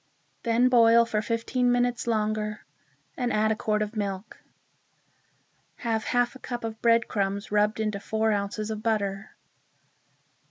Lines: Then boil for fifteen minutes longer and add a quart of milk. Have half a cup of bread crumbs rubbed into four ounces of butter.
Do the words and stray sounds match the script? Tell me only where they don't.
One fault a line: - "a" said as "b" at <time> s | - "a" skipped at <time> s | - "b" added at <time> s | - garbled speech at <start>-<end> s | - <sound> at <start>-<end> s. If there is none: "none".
none